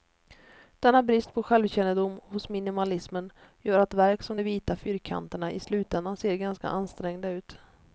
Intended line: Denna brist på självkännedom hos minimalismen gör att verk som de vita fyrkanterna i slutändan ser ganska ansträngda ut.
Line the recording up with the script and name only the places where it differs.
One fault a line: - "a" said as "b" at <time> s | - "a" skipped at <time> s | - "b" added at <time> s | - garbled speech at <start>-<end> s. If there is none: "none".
none